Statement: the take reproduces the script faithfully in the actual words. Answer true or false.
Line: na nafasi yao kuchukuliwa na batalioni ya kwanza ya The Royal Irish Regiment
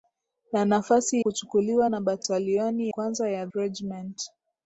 false